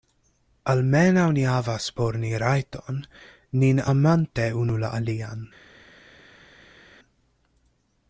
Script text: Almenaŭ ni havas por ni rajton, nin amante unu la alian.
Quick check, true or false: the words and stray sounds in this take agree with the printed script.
true